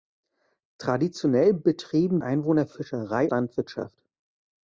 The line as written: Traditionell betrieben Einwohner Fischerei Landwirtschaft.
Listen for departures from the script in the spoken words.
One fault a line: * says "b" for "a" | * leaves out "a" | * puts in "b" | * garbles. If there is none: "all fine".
all fine